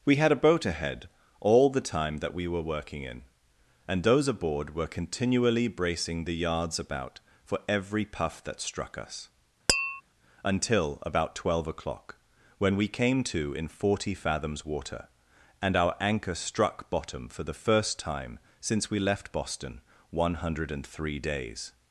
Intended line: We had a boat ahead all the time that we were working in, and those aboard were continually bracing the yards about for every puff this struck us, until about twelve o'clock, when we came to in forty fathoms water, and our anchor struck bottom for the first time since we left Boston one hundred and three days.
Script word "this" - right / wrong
wrong